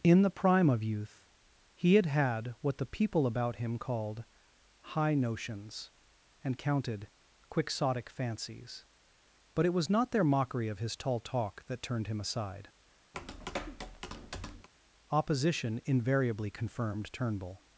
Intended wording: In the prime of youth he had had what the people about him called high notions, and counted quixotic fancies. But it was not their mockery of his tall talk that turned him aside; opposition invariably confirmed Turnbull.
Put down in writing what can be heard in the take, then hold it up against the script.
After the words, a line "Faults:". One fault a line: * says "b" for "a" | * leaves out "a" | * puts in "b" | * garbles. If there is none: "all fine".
In the prime of youth he had had what the people about him called high notions, and counted quixotic fancies. But it was not their mockery of his tall talk that turned him aside; opposition invariably confirmed Turnbull.
Faults:
all fine